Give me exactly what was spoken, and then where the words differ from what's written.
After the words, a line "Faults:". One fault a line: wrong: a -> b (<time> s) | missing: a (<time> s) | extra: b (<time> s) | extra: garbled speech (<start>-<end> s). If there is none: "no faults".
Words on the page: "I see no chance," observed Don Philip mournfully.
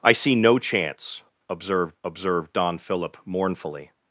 "I see no chance," observed observed Don Philip mournfully.
Faults:
extra: observed (2.0 s)